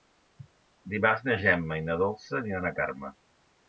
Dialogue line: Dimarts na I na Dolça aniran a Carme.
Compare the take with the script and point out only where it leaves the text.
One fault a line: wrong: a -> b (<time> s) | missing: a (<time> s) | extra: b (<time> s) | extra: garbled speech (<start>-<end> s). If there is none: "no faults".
extra: Gemma (1.4 s)